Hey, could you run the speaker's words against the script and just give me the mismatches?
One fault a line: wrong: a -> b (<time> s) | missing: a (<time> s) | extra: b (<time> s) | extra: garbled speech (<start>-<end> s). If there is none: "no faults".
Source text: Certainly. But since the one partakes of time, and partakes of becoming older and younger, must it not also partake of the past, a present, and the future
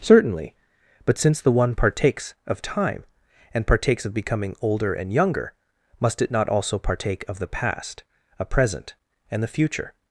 no faults